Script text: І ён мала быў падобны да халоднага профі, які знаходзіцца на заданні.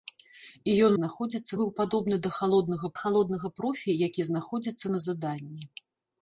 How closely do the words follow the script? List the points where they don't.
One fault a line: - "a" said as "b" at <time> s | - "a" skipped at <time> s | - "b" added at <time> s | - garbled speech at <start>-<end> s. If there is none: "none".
- "мала" said as "знаходзіцца" at 1.0 s
- "халоднага" added at 3.0 s